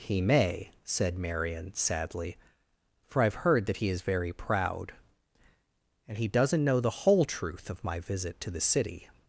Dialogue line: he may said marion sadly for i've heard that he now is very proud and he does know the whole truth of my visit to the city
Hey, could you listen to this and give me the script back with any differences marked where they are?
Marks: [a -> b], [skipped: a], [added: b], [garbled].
he may said marion sadly for i've heard that he [skipped: now] is very proud and he [does -> doesn't] know the whole truth of my visit to the city